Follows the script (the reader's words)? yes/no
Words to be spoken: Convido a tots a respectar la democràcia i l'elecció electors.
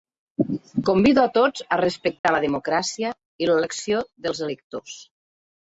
no